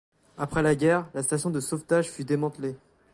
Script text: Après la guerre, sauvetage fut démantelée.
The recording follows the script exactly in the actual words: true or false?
false